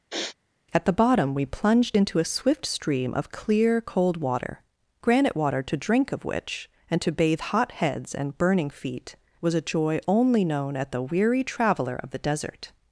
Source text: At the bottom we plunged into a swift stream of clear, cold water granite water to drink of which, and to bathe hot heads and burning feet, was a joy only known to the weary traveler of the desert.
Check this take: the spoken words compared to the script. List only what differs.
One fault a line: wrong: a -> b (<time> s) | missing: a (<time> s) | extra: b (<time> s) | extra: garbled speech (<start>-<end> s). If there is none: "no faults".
wrong: to -> at (10.8 s)